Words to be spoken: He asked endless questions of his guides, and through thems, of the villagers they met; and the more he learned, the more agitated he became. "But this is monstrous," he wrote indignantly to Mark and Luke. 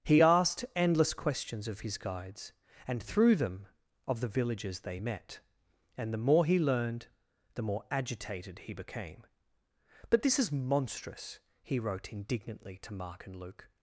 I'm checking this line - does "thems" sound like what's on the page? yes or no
no